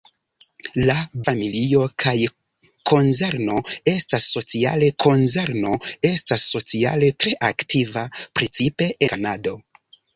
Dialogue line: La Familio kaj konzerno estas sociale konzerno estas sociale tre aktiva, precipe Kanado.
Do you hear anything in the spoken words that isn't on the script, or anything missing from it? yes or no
no